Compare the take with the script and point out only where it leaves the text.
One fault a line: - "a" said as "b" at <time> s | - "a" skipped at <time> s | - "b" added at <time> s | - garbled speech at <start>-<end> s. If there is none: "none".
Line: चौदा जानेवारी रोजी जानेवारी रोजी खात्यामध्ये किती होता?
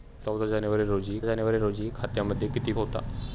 none